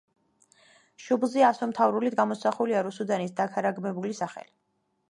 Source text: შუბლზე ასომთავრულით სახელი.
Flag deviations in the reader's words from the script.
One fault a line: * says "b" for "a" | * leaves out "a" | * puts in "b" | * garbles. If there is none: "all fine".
* puts in "გამოსახულია რუსუდანის დაქარაგმებული"